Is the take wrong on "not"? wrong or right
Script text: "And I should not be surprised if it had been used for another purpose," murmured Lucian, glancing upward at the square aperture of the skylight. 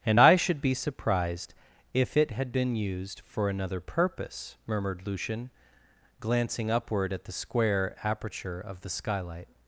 wrong